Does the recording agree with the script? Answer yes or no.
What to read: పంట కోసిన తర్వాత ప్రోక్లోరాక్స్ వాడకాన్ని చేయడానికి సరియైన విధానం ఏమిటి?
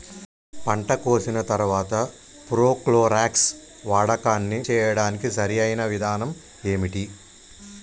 yes